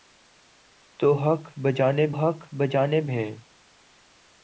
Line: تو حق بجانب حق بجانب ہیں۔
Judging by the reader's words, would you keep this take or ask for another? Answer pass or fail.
pass